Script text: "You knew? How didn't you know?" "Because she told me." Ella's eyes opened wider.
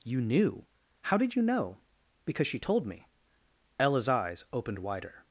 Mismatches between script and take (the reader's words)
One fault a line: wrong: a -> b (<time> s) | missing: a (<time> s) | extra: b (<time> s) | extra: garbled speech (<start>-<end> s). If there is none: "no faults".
wrong: didn't -> did (1.2 s)